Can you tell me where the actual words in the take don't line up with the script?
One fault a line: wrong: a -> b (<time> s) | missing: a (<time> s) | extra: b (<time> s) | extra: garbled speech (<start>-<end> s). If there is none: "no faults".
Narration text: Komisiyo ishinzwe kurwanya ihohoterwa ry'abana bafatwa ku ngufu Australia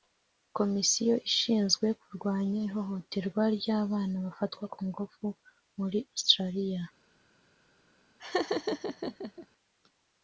extra: muri (5.8 s)